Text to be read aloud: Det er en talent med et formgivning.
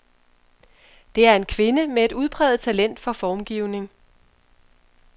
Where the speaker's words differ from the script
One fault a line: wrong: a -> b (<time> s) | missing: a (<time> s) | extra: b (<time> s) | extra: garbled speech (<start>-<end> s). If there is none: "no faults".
wrong: talent -> kvinde (1.4 s)
extra: udpræget talent for (2.1 s)